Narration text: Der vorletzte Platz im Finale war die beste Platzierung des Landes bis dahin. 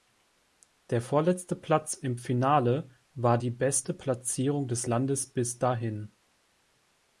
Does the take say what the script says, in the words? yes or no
yes